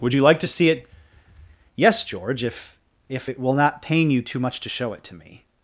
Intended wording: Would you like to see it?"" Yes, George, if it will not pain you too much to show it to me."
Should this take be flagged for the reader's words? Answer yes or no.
yes